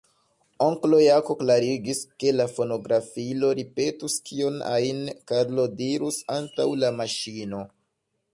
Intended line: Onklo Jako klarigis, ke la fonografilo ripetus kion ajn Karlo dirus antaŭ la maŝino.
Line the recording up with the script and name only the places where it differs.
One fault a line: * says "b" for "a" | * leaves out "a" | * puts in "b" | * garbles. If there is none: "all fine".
all fine